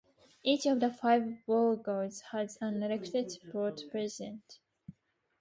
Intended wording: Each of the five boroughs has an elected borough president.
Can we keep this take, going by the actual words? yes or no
yes